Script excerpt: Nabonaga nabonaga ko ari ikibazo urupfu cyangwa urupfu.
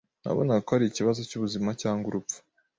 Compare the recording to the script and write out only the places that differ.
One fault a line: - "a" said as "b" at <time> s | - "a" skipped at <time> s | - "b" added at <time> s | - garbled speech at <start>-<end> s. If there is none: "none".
- "nabonaga" skipped at 0.6 s
- "urupfu" said as "cyubuzima" at 1.3 s